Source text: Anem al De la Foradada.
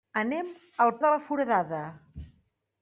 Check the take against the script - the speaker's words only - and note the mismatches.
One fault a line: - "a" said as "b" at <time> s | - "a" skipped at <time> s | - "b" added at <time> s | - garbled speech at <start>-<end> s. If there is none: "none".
none